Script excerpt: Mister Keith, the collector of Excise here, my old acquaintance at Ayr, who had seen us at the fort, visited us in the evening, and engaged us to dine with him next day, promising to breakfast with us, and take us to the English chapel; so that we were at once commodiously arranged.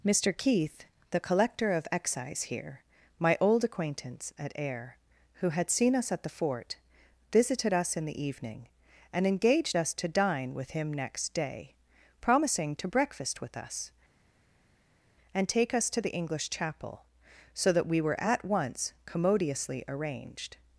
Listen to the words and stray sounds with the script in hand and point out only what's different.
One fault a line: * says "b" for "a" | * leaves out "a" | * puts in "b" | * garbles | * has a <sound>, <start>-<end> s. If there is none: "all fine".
all fine